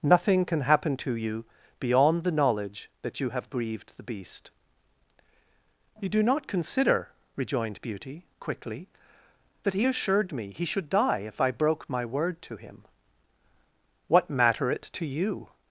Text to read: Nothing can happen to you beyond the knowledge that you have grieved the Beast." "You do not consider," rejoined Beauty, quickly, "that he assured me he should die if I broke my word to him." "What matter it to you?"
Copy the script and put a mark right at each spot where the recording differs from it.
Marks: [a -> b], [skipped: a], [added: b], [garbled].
Nothing can happen to you beyond the knowledge that you have grieved the Beast." "You do not consider," rejoined Beauty, quickly, "that he assured me he should die if I broke my word to him." "What matter it to you?"